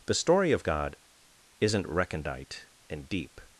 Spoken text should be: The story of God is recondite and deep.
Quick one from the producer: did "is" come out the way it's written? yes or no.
no